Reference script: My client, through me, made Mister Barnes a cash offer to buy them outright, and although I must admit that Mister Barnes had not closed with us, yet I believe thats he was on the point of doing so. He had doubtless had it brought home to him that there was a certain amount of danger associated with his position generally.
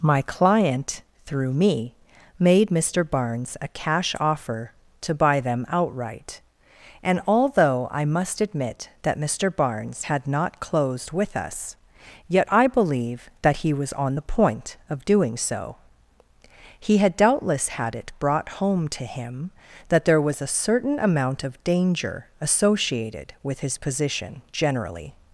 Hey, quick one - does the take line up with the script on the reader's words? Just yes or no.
no